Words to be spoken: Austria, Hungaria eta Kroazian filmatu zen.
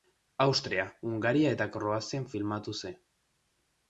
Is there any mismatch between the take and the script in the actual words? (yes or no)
no